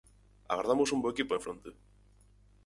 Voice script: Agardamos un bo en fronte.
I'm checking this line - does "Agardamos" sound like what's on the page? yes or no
yes